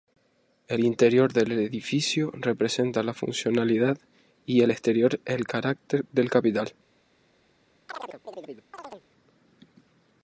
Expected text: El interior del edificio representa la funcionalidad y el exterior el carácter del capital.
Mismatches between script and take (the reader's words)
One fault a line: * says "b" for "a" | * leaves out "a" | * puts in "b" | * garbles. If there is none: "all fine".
all fine